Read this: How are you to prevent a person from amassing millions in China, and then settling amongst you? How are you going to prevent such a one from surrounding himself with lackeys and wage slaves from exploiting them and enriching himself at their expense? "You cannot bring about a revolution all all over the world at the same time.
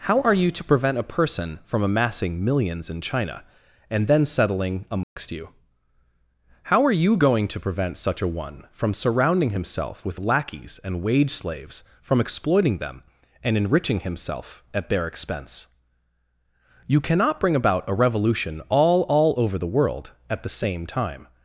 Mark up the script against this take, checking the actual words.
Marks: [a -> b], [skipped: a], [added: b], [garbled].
How are you to prevent a person from amassing millions in China, and then settling amongst you? How are you going to prevent such a one from surrounding himself with lackeys and wage slaves from exploiting them and enriching himself at their expense? "You cannot bring about a revolution all all over the world at the same time.